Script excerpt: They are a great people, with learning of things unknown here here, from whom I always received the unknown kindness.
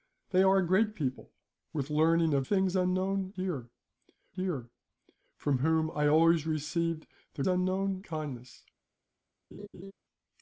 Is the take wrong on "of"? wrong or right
right